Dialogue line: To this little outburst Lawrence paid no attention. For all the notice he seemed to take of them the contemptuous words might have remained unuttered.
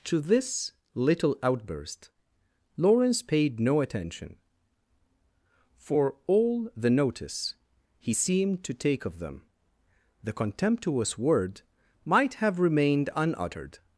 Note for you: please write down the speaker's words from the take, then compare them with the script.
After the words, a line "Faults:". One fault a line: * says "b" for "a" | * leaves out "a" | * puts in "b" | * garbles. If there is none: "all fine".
To this little outburst Lawrence paid no attention. For all the notice he seemed to take of them the contemptuous word might have remained unuttered.
Faults:
* says "word" for "words"